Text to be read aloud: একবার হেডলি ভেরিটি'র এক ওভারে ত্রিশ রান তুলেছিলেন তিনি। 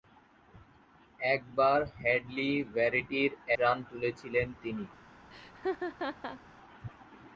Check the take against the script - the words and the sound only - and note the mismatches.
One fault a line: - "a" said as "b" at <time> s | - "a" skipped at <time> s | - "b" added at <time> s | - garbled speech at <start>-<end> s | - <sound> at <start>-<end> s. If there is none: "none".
- "এক ওভারে ত্রিশ" skipped at 3.3 s
- laugh at 5.3-6.4 s